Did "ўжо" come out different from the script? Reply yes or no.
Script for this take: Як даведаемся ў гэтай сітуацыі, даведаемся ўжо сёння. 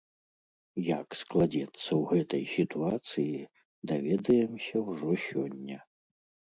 no